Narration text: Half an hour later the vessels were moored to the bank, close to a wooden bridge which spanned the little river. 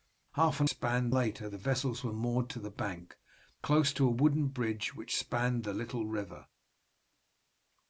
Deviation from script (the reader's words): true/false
true